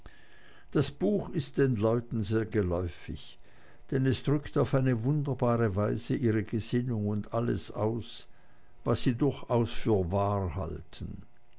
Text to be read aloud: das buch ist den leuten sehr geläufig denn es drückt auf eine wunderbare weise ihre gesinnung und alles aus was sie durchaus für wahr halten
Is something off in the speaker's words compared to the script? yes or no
no